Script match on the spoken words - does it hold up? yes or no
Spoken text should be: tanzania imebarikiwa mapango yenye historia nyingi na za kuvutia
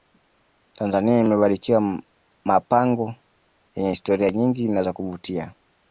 yes